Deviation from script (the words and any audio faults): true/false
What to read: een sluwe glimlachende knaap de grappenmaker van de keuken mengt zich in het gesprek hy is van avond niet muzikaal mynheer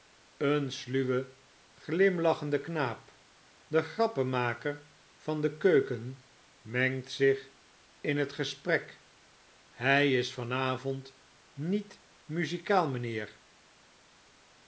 false